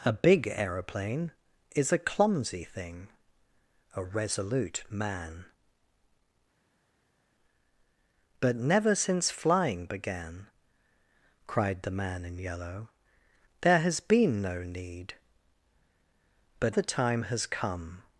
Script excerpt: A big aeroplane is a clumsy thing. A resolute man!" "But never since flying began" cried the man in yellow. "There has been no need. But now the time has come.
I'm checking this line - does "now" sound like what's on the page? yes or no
no